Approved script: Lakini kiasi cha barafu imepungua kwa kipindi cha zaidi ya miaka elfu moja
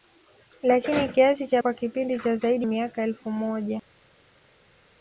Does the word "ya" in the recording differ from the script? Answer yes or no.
yes